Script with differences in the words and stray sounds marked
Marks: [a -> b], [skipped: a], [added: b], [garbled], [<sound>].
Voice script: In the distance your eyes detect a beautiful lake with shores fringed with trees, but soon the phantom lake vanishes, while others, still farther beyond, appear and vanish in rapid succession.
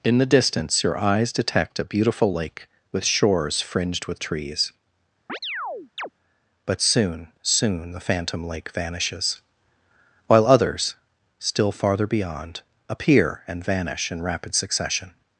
In the distance your eyes detect a beautiful lake with shores fringed with trees, [chirp] but soon [added: soon] the phantom lake vanishes, while others, still farther beyond, appear and vanish in rapid succession.